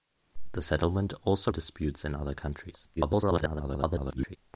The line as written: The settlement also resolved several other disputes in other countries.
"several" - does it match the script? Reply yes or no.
no